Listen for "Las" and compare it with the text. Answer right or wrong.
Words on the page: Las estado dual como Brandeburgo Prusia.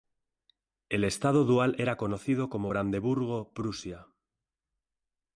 wrong